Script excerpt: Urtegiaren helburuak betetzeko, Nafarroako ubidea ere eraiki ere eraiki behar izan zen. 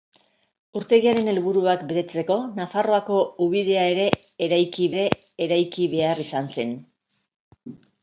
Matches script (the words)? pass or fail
pass